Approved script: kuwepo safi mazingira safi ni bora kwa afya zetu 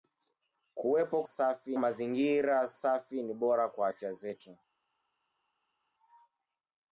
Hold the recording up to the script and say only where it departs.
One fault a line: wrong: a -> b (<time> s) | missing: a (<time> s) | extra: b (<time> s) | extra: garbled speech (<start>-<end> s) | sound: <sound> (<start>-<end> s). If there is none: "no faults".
no faults